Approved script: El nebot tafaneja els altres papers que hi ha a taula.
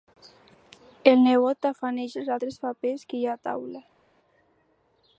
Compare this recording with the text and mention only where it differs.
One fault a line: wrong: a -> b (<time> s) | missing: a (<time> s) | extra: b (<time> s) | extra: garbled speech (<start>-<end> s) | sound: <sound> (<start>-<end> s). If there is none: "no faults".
no faults